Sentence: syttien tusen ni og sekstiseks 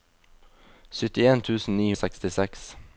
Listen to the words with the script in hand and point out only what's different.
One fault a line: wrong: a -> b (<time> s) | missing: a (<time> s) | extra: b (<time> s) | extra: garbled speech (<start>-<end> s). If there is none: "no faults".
no faults